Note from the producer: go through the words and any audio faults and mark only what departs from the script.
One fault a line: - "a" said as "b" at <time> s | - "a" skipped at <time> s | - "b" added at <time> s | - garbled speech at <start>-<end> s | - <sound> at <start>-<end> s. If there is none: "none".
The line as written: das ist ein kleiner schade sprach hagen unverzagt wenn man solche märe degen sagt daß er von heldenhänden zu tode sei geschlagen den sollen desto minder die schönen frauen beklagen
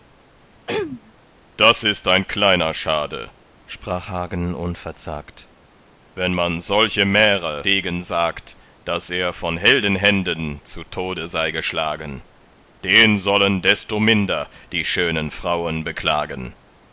- throat clearing at 0.7-1.1 s